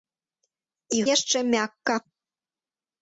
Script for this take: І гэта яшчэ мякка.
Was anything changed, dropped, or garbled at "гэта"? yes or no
yes